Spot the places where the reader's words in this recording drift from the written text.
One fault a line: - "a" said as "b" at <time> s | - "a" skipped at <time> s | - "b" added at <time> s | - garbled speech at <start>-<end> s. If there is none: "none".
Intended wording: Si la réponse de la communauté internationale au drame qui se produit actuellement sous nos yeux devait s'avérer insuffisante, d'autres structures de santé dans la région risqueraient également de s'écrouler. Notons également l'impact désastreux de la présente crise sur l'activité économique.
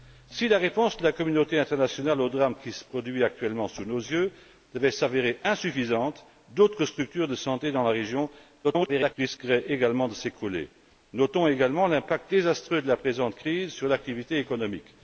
- garbled speech at 8.6-9.1 s